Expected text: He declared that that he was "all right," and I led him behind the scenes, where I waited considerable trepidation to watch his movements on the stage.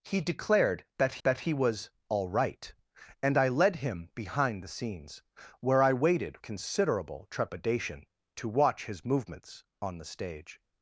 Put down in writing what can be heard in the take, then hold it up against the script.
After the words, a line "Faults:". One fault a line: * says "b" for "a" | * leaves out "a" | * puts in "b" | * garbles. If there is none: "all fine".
He declared that that he was "all right," and I led him behind the scenes, where I waited considerable trepidation to watch his movements on the stage.
Faults:
all fine